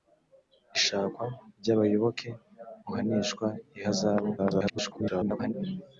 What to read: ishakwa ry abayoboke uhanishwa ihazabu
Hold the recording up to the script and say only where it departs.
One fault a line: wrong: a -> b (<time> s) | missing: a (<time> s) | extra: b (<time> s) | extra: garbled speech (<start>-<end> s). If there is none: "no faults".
extra: garbled speech (4.4-5.5 s)